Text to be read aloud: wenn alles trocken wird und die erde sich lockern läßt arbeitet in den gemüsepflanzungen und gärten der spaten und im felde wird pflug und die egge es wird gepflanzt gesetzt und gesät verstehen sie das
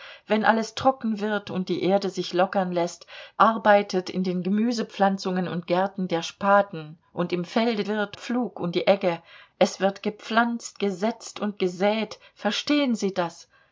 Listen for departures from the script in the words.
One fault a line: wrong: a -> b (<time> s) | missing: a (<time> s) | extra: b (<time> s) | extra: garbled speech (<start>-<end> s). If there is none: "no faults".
no faults